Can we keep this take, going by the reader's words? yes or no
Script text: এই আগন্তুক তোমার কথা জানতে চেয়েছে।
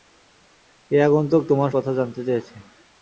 yes